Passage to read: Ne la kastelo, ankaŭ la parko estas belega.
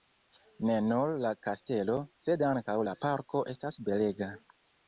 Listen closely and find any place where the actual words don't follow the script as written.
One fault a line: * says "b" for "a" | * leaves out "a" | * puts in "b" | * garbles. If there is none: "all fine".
* puts in "nur"
* puts in "sed"